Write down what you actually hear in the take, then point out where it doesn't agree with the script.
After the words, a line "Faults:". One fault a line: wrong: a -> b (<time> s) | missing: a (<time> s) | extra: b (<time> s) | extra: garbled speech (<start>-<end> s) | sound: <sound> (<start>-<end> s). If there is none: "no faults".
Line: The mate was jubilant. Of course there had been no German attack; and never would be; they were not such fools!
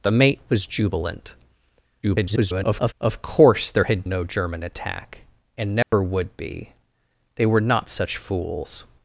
The mate was jubilant. [garbled] Of course there had no German attack; and never would be; they were not such fools!
Faults:
extra: garbled speech (2.0-2.9 s)
missing: been (4.0 s)
sound: dropout (5.8-5.9 s)